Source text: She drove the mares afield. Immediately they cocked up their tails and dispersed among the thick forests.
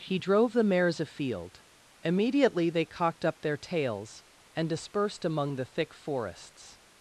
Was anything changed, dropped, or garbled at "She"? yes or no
yes